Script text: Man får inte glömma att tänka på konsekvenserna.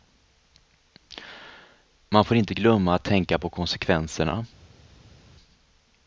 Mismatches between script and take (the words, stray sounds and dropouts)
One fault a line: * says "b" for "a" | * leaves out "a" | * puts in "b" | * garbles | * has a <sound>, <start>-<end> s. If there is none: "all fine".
all fine